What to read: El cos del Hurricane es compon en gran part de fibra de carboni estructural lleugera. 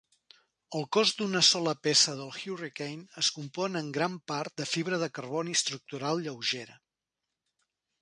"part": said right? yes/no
yes